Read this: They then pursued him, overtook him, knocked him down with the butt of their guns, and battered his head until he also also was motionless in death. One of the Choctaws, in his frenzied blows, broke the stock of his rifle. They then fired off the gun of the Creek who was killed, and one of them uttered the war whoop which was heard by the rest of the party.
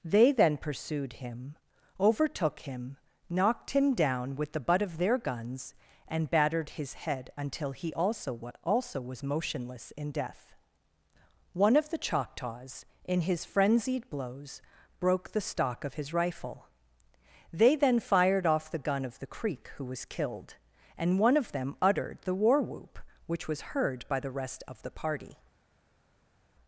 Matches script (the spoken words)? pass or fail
pass